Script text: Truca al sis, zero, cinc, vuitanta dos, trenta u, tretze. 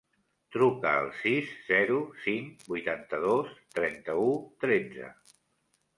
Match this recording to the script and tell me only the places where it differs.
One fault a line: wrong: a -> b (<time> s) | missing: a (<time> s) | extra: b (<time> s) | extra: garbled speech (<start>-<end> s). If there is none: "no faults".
no faults